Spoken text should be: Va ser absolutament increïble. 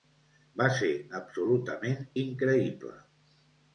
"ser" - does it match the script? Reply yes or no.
yes